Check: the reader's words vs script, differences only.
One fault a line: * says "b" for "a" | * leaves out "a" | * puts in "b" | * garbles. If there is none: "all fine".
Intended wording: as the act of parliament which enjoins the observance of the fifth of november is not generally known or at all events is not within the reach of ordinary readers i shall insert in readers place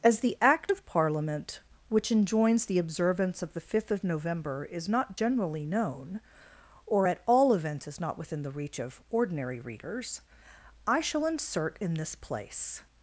* says "this" for "readers"